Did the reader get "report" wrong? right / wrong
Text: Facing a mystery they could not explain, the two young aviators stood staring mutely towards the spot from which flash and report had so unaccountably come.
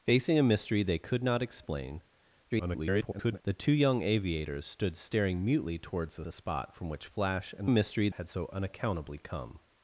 wrong